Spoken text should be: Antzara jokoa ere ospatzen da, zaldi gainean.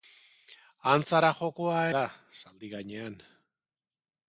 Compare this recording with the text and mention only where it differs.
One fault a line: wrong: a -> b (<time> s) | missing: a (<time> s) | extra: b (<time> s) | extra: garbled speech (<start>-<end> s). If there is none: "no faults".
missing: ere ospatzen (1.8 s)